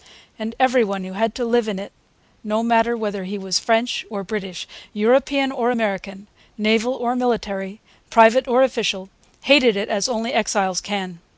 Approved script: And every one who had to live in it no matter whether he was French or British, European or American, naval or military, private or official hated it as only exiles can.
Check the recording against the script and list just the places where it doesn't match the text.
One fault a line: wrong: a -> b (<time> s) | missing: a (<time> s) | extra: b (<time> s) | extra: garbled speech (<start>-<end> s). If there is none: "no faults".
no faults